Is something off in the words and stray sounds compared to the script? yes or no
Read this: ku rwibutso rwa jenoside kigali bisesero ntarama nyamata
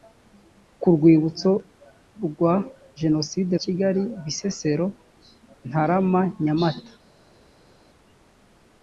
no